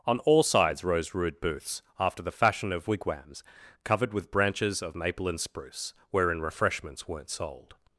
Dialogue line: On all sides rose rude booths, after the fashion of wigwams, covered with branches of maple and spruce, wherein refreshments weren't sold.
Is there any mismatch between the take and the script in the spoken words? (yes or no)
no